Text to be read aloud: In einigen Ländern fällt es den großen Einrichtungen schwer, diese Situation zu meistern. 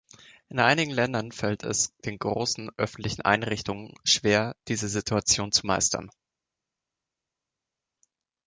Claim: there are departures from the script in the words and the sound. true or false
true